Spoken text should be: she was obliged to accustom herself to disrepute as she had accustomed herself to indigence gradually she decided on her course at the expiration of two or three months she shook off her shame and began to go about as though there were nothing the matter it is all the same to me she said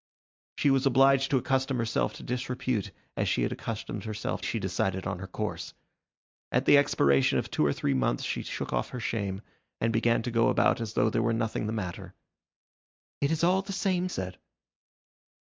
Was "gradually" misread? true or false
true